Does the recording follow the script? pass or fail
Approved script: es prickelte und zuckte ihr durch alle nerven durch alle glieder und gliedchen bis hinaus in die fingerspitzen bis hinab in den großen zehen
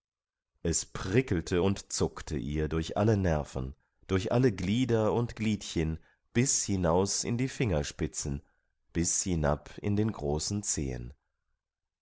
pass